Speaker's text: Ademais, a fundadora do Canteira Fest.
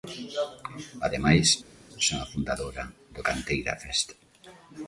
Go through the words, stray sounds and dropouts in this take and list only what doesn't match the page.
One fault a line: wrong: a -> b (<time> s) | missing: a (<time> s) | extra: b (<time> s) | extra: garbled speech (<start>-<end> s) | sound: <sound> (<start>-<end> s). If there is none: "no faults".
extra: son (2.1 s)